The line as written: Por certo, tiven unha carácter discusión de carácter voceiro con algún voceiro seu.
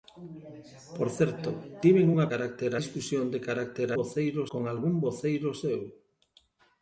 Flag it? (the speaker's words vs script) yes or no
no